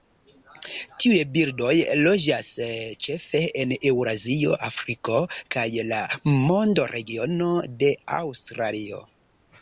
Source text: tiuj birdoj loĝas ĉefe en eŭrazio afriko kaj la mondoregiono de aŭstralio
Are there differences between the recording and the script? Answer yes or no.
no